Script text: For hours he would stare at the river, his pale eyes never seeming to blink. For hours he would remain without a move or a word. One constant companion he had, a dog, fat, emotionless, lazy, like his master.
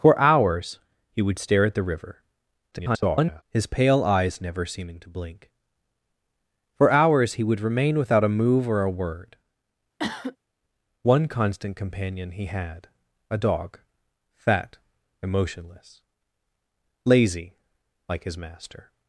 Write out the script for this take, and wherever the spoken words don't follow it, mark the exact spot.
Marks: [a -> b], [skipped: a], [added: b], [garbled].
For hours he would stare at the river, [garbled] his pale eyes never seeming to blink. For hours he would remain without a move or a word. One constant companion he had, a dog, fat, emotionless, lazy, like his master.